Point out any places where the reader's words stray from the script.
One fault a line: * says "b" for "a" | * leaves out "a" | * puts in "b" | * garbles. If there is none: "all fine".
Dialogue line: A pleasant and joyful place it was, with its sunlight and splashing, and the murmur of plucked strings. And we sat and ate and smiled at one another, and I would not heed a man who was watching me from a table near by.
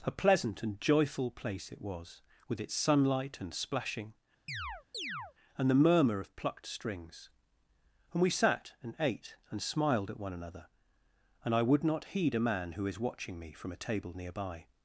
* says "is" for "was"